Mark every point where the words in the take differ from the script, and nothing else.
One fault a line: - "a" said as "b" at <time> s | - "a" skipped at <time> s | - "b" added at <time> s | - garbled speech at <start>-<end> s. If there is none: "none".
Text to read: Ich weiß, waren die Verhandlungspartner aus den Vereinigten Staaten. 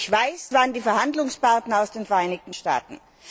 none